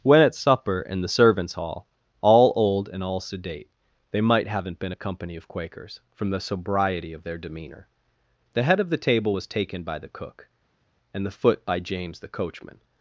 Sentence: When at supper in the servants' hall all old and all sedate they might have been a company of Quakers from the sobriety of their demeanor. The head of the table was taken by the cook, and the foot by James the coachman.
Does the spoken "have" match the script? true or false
false